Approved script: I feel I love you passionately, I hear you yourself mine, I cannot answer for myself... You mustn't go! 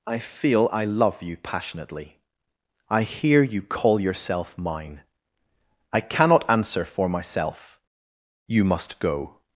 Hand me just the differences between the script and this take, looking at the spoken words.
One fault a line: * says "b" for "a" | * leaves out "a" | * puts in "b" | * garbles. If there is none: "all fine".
* puts in "call"
* says "must" for "mustn't"